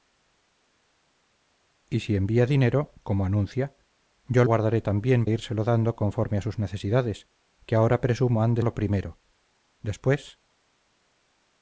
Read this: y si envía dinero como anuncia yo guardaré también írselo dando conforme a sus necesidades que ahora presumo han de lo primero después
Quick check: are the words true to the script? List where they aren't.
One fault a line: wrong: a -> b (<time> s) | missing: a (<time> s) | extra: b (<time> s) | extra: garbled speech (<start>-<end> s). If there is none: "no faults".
no faults